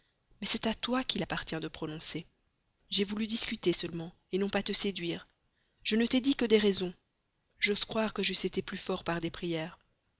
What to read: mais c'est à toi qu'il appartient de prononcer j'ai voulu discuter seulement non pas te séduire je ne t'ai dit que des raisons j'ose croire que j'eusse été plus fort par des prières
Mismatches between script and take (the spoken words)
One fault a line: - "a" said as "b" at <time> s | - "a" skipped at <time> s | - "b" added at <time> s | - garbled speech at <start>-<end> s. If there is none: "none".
none